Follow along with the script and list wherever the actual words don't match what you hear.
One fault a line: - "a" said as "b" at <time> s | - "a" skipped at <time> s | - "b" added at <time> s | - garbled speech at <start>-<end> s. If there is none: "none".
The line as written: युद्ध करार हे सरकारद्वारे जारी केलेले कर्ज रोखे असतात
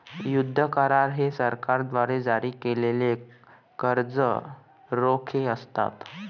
none